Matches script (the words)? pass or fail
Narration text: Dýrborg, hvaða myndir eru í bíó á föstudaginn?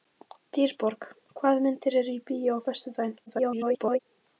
fail